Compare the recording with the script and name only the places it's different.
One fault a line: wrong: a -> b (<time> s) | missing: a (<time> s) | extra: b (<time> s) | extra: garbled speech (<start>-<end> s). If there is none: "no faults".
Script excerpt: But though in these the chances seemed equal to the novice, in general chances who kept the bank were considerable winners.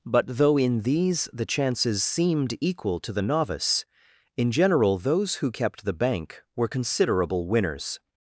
wrong: chances -> those (5.0 s)